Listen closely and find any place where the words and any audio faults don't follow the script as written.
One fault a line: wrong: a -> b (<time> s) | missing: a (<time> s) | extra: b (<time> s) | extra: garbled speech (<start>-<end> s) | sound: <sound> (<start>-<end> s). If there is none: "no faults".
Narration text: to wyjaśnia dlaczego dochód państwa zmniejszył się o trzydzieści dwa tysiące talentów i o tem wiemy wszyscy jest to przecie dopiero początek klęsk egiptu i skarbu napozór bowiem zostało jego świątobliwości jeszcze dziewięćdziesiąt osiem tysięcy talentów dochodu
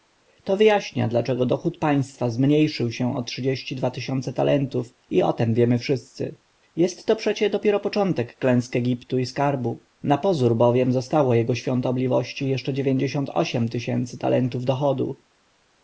no faults